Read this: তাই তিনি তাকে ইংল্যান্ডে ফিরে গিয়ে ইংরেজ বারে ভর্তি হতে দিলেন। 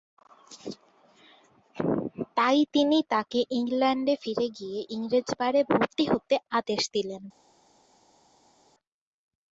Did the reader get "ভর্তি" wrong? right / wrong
right